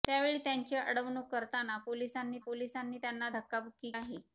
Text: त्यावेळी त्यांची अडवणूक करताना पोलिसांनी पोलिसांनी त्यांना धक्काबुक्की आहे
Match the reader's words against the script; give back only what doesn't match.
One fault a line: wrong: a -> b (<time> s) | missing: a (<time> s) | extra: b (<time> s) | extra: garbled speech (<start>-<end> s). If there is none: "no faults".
no faults